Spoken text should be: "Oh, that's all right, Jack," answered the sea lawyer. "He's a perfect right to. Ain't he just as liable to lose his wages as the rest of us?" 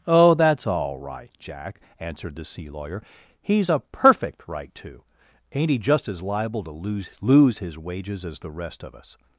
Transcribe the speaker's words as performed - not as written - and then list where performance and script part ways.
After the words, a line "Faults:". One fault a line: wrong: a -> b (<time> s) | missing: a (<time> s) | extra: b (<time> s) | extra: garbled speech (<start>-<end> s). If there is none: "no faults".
"Oh, that's all right, Jack," answered the sea lawyer. "He's a perfect right to. Ain't he just as liable to lose lose his wages as the rest of us?"
Faults:
extra: lose (7.2 s)